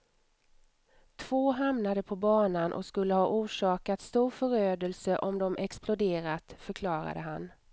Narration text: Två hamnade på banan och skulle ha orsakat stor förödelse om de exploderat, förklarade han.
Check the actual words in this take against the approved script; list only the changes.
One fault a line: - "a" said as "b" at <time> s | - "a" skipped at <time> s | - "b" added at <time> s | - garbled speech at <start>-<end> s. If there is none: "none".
none